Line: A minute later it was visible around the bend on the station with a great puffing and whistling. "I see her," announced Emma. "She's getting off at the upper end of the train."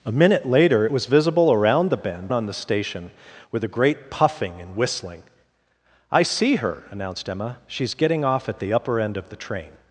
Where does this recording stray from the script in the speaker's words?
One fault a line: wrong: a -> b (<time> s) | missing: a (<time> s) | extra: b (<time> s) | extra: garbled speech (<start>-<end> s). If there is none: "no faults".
no faults